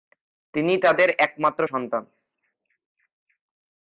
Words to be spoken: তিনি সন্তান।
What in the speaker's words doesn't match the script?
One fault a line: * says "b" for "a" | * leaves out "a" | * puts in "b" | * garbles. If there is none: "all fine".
* puts in "তাদের একমাত্র"